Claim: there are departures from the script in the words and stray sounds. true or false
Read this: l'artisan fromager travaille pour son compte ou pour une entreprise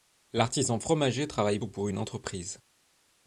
true